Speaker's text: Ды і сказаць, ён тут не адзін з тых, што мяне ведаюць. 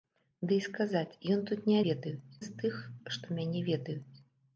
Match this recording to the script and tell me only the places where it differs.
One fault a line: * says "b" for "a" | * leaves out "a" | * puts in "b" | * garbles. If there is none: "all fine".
* says "ведаюць" for "адзін"